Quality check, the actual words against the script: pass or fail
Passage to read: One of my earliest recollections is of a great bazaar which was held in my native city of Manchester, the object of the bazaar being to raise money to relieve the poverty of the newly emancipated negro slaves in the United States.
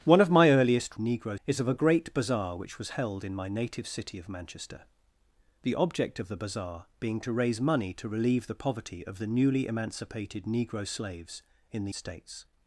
fail